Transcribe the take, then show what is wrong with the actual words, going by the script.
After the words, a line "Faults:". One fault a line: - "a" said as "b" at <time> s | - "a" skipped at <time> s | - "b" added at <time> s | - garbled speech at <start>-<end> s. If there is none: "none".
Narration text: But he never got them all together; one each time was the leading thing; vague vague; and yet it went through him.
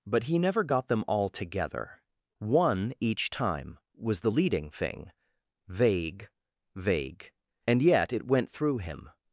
But he never got them all together; one each time was the leading thing; vague vague; and yet it went through him.
Faults:
none